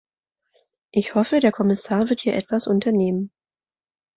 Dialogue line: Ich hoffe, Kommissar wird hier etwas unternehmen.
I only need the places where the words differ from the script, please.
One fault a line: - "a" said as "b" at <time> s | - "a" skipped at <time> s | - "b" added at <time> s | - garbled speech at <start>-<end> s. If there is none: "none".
- "der" added at 1.4 s